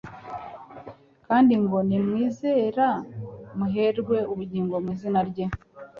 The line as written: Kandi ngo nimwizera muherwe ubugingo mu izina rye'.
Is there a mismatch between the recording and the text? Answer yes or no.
no